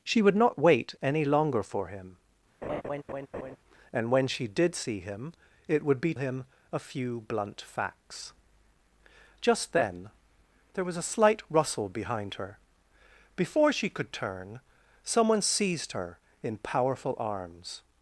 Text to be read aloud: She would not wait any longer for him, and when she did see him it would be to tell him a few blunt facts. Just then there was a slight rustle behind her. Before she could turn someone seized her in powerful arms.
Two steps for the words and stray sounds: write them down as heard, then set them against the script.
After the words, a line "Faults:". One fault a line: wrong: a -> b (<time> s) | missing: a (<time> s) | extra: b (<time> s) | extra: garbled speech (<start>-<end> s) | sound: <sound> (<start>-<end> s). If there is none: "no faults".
She would not wait any longer for him, and when she did see him it would be him a few blunt facts. Just then there was a slight rustle behind her. Before she could turn someone seized her in powerful arms.
Faults:
sound: laugh (2.6-3.6 s)
missing: to tell (6.1 s)